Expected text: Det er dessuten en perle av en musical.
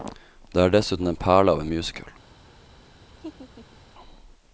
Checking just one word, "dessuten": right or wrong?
right